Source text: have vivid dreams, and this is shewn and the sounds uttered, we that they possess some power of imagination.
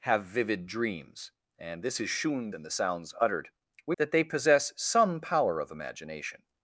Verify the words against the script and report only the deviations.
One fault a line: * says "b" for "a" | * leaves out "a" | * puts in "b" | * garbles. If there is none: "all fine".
all fine